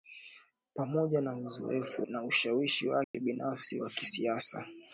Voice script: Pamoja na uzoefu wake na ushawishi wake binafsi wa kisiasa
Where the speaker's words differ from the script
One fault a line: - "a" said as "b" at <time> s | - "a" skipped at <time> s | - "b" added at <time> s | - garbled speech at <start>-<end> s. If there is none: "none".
- "wake" skipped at 2.1 s